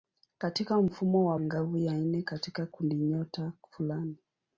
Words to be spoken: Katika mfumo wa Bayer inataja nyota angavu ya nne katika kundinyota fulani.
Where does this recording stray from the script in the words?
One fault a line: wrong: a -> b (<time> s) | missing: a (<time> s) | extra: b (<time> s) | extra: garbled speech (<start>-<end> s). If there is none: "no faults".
missing: Bayer inataja nyota (1.4 s)